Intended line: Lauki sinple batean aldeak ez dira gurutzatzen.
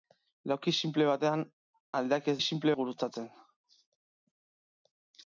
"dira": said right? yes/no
no